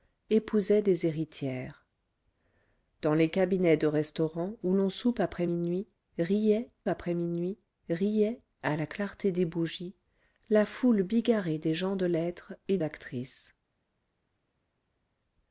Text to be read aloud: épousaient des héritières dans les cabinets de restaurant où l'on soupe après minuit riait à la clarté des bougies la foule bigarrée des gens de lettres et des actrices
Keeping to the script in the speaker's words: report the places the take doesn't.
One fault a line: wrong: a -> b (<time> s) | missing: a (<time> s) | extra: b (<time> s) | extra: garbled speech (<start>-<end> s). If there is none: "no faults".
extra: après minuit riait (6.9 s)
missing: des (12.8 s)